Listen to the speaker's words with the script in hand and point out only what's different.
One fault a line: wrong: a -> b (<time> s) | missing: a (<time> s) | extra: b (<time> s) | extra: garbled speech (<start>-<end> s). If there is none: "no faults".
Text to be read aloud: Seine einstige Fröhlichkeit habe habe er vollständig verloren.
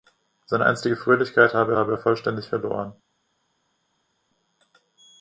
no faults